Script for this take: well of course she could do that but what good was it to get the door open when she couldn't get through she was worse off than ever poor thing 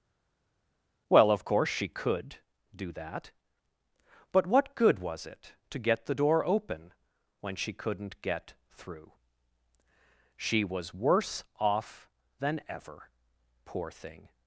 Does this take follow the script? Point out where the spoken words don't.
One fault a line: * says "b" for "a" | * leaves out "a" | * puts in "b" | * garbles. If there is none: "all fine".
all fine